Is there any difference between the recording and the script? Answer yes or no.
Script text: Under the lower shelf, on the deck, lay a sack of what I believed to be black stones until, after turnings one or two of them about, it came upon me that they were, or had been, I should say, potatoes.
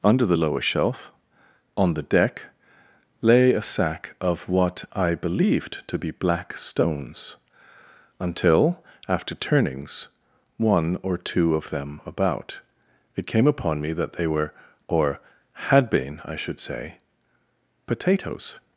no